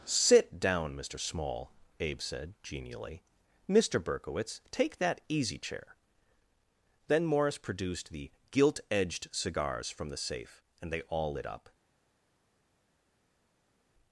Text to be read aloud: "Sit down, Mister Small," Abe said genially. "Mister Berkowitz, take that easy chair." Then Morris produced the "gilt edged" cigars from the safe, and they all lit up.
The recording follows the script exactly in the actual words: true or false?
true